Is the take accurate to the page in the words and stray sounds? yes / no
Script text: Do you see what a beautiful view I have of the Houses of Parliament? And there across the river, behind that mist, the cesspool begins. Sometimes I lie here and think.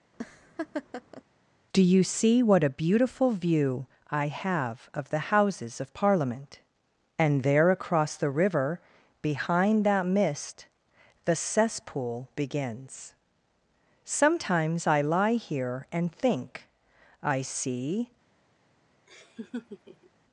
no